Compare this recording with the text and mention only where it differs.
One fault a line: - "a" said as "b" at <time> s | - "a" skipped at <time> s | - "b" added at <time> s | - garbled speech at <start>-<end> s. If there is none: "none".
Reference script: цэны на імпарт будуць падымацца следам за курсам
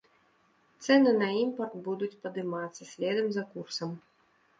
none